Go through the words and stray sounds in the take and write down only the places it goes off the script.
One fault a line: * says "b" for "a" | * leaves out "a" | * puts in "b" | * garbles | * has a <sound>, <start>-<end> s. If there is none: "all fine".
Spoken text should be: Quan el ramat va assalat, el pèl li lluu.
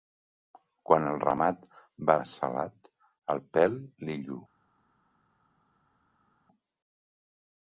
all fine